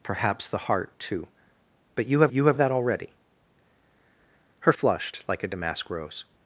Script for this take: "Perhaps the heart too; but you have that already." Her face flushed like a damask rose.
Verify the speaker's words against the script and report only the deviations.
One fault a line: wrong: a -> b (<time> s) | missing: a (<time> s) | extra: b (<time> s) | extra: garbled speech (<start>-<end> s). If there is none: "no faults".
extra: you have (2.3 s)
missing: face (4.7 s)